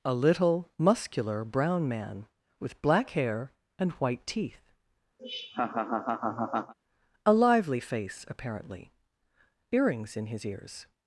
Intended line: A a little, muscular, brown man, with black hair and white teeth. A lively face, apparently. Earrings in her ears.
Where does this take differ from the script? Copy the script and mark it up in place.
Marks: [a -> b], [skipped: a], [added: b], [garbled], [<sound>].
A [skipped: a] little, muscular, brown man, with black hair and white teeth. [laugh] A lively face, apparently. Earrings in [her -> his] ears.